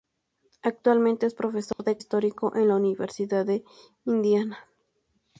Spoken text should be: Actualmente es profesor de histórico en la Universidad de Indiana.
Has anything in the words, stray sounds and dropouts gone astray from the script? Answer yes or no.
yes